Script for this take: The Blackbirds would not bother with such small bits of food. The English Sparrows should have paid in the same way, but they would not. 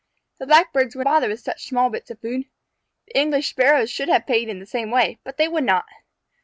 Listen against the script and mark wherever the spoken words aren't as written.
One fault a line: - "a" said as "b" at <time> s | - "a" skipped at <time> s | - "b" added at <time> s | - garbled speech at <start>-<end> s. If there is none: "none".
- "not" skipped at 1.1 s